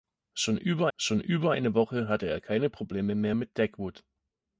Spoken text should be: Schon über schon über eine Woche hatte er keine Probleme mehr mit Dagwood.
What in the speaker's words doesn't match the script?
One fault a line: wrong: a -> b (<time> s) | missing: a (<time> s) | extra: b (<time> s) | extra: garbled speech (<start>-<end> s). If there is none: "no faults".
no faults